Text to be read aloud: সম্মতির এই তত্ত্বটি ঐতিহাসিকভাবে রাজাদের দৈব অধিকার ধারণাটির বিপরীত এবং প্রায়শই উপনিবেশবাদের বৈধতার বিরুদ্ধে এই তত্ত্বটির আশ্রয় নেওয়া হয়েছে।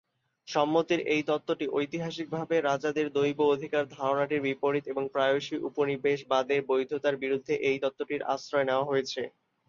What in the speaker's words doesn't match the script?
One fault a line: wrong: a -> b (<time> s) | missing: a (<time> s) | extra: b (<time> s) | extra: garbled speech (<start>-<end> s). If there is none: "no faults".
no faults